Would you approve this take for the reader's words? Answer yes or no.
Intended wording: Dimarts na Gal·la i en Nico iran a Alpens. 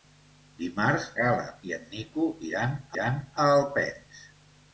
no